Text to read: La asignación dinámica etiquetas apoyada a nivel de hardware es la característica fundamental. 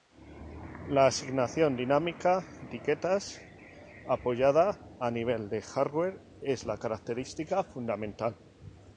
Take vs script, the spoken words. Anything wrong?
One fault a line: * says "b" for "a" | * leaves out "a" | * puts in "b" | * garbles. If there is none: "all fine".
all fine